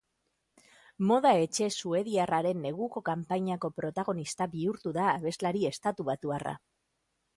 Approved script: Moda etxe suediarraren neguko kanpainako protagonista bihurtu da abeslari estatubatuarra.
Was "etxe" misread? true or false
false